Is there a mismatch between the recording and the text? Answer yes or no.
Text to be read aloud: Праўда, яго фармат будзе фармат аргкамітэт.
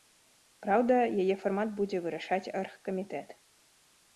yes